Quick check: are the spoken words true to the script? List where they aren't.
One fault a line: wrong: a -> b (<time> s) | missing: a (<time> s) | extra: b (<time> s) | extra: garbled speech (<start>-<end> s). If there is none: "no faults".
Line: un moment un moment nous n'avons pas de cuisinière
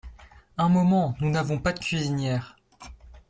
missing: un moment (1.1 s)